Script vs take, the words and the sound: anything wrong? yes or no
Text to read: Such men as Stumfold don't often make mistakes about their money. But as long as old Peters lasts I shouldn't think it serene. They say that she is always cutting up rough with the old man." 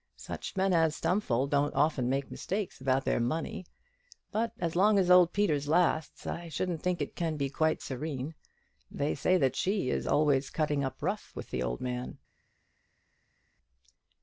yes